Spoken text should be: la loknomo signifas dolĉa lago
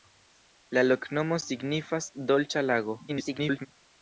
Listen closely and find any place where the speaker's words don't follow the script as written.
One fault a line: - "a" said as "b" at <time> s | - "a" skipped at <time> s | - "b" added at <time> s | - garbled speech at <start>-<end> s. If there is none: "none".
- garbled speech at 3.1-3.7 s